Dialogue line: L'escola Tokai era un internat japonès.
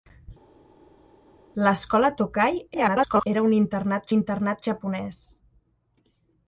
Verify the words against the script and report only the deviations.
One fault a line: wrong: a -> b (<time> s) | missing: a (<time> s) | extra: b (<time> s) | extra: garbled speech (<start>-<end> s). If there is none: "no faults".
extra: garbled speech (2.7-3.3 s)
extra: internat (4.2 s)